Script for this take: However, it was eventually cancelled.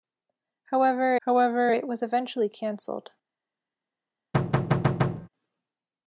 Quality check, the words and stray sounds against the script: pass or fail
fail